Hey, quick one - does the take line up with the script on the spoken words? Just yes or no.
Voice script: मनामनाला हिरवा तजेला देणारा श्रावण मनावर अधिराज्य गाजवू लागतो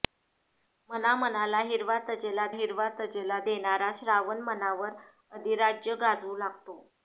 no